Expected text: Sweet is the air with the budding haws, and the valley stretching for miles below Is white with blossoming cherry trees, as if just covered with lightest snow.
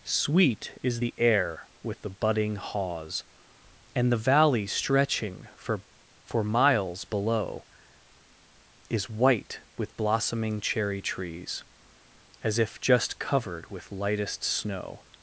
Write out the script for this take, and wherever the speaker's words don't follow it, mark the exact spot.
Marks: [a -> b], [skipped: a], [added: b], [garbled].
Sweet is the air with the budding haws, and the valley stretching for [added: for] miles below Is white with blossoming cherry trees, as if just covered with lightest snow.